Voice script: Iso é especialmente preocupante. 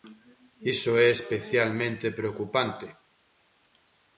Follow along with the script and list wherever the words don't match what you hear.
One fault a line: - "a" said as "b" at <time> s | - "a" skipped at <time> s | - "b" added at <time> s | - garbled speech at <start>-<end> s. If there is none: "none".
none